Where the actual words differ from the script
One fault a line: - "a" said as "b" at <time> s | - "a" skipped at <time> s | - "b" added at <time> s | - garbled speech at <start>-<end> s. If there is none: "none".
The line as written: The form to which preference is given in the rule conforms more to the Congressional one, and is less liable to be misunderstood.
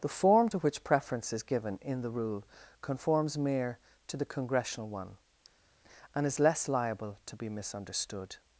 - "more" said as "mere" at 3.4 s